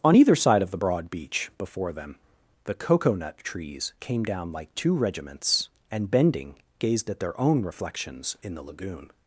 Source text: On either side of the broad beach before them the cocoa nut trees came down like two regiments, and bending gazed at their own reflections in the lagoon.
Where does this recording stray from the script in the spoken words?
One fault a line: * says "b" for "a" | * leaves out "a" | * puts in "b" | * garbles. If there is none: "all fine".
all fine